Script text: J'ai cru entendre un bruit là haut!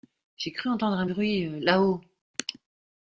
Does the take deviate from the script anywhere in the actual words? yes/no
no